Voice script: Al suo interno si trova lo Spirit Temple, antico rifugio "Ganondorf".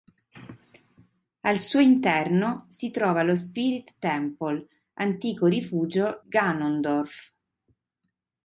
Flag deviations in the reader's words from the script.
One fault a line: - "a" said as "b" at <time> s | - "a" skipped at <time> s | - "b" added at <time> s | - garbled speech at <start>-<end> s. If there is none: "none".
none